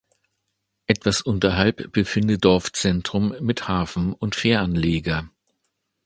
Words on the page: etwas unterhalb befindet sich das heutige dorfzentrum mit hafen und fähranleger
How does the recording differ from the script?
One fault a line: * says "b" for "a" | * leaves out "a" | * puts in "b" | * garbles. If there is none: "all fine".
* leaves out "sich das heutige"